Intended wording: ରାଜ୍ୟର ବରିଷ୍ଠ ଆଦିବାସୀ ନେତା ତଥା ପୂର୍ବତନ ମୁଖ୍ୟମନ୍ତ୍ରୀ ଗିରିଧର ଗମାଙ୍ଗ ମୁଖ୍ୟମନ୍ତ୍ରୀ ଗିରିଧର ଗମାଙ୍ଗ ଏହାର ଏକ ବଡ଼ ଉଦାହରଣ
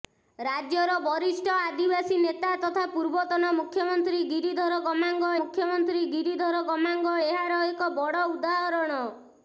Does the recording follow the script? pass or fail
pass